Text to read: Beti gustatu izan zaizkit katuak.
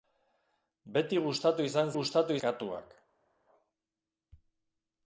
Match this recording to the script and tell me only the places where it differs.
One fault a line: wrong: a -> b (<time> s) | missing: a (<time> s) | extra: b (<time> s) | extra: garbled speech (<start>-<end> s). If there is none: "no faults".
wrong: zaizkit -> gustatu (2.0 s)